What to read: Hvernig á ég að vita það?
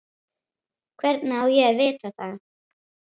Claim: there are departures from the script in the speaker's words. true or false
false